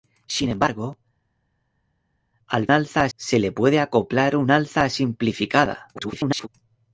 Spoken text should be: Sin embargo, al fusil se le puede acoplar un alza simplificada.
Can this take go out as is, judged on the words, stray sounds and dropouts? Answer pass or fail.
fail